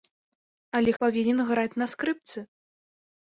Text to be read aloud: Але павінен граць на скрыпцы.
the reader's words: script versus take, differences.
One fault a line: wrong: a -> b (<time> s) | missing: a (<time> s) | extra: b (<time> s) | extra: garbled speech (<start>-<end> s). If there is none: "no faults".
no faults